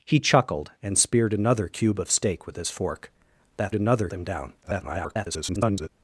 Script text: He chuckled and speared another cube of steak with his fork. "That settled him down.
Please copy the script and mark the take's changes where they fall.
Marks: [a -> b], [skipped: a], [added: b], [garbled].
He chuckled and speared another cube of steak with his fork. "That [settled -> another] him down. [garbled]